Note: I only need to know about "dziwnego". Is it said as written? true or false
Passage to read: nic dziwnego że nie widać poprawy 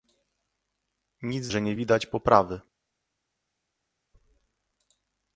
false